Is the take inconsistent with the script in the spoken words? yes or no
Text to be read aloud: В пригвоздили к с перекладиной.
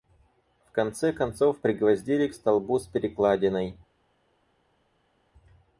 yes